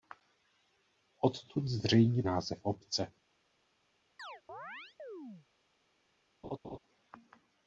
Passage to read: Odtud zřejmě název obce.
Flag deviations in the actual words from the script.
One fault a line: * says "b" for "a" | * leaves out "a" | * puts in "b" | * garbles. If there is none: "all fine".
all fine